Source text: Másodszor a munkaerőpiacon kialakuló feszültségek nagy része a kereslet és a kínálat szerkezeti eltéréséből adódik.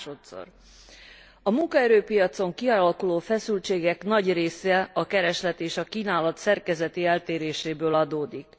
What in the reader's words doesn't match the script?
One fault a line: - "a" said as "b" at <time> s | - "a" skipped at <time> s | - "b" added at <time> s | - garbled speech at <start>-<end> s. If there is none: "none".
none